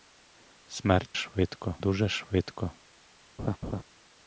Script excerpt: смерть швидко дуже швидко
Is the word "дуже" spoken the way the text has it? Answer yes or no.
yes